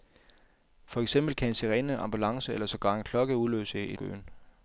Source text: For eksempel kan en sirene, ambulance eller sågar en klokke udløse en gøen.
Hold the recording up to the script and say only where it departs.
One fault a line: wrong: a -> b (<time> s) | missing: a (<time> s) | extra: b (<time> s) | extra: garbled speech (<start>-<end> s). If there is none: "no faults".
no faults